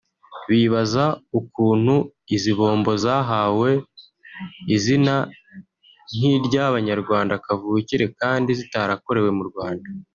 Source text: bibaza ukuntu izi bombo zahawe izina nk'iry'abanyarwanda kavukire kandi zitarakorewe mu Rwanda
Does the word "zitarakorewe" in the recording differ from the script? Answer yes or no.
no